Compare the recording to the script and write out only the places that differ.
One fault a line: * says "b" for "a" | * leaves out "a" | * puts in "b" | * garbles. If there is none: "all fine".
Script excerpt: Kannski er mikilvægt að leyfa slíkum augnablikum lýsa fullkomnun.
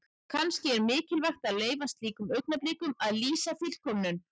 * puts in "að"